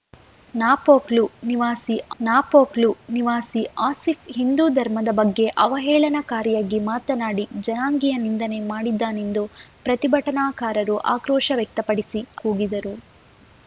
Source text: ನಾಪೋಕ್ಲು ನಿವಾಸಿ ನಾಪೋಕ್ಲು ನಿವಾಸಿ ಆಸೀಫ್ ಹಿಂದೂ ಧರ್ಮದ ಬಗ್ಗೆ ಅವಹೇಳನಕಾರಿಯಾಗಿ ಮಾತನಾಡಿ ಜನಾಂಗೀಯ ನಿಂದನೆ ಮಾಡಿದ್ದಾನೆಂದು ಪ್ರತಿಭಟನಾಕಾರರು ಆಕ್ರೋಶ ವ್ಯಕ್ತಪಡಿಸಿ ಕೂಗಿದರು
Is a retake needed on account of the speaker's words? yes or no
no